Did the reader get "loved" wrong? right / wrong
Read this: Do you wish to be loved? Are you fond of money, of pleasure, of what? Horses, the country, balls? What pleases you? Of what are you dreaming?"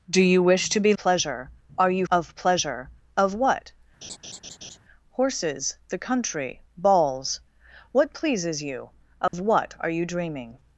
wrong